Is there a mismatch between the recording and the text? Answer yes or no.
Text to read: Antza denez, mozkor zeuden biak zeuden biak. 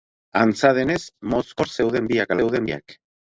no